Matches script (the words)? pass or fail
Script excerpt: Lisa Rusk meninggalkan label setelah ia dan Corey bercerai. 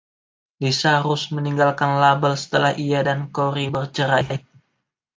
pass